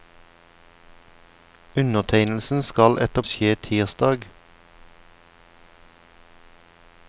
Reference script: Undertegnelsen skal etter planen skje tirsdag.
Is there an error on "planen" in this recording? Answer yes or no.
yes